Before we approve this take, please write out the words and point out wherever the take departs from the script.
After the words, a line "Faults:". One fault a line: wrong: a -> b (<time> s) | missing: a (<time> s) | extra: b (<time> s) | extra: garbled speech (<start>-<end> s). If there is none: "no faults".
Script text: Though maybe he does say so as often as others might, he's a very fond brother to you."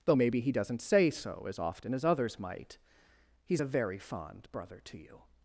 Though maybe he doesn't say so as often as others might, he's a very fond brother to you."
Faults:
wrong: does -> doesn't (0.5 s)